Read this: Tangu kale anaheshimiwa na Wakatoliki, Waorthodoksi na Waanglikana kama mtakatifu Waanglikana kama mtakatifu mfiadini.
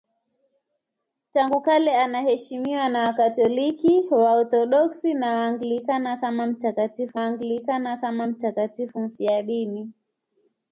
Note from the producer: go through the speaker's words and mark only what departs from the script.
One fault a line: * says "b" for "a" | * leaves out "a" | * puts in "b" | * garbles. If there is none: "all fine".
all fine